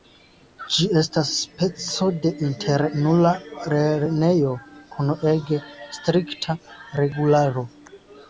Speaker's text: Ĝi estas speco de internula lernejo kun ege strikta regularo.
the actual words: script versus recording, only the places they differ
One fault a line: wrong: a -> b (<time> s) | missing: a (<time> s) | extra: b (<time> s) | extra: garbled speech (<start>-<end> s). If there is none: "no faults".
no faults